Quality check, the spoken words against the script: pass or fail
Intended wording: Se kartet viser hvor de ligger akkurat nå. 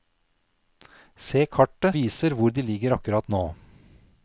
pass